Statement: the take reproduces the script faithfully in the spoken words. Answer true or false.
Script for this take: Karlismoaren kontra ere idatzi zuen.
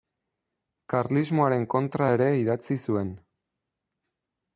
true